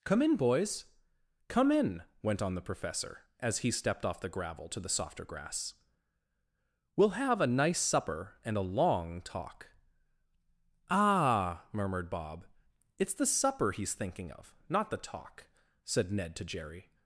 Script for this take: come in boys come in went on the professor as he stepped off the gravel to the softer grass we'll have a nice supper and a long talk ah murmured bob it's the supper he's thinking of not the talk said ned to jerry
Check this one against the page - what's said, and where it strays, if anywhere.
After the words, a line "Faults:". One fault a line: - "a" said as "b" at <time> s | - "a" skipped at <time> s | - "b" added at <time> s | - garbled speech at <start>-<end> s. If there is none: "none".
come in boys come in went on the professor as he stepped off the gravel to the softer grass we'll have a nice supper and a long talk ah murmured bob it's the supper he's thinking of not the talk said ned to jerry
Faults:
none